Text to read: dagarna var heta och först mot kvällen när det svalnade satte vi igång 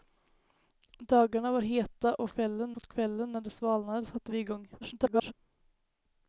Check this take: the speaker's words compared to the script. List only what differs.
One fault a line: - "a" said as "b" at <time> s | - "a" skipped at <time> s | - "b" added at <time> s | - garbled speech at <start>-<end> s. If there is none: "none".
- "först" said as "kvällen" at 2.3 s
- garbled speech at 4.8-5.3 s